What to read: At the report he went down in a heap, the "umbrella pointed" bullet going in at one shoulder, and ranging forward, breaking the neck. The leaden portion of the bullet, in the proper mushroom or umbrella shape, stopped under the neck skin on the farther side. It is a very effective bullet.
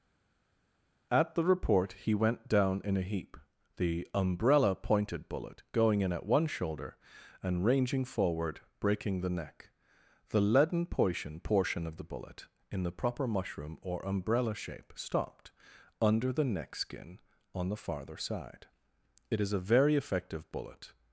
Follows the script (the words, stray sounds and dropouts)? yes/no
no